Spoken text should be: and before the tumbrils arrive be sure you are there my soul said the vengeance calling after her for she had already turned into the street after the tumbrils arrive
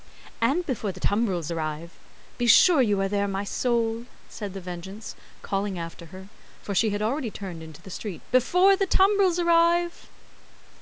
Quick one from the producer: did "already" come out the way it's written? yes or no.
yes